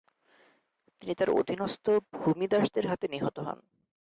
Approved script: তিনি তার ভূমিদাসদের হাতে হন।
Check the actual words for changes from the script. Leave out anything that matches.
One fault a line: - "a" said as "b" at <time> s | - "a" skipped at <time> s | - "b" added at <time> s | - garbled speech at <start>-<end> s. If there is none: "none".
- "অধীনস্থ" added at 1.4 s
- "নিহত" added at 3.1 s